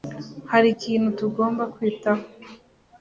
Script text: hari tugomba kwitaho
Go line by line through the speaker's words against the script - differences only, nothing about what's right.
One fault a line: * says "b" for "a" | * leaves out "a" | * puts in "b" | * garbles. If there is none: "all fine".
* puts in "ikintu"